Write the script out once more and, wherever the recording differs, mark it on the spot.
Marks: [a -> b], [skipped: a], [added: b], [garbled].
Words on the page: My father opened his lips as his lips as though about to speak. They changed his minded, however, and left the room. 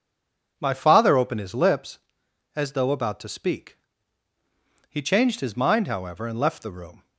My father opened his lips as [skipped: his lips as] though about to speak. [They -> He] changed his [minded, -> mind] however, and left the room.